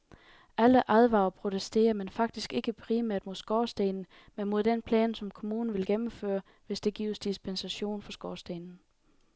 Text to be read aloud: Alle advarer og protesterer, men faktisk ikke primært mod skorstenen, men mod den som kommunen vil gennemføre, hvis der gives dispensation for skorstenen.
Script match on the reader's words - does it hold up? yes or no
no